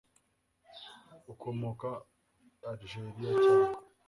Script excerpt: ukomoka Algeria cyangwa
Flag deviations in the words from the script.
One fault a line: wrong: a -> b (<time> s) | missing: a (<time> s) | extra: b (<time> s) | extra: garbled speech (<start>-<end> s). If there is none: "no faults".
no faults